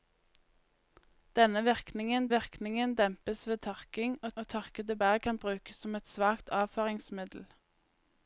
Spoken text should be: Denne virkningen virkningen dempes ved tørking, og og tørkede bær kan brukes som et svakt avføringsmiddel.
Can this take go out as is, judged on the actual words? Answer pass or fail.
pass